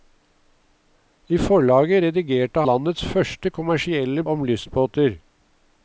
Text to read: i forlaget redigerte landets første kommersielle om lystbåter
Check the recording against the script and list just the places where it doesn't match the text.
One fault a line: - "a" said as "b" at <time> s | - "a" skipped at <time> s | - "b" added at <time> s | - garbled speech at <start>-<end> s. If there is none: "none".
none